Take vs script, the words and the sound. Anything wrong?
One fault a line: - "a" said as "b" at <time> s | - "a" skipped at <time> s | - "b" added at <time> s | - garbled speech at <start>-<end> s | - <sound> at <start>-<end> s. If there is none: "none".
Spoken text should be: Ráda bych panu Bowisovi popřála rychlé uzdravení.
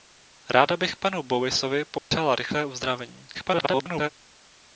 - dropout at 2.0-2.1 s
- garbled speech at 3.3-4.1 s